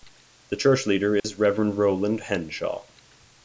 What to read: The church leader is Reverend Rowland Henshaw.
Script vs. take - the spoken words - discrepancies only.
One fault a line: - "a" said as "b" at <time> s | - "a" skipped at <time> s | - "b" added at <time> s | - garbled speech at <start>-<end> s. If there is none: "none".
none